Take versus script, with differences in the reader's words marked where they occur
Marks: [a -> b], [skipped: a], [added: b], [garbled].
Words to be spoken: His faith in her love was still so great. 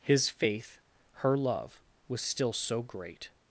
His faith [skipped: in] her love was still so great.